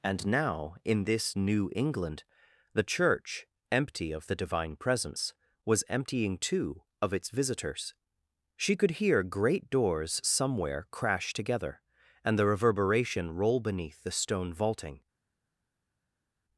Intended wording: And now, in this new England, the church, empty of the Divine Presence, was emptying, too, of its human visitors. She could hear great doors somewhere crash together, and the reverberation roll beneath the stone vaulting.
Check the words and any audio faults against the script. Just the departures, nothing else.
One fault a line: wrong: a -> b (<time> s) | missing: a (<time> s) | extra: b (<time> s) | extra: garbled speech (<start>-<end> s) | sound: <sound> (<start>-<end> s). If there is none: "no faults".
missing: human (7.3 s)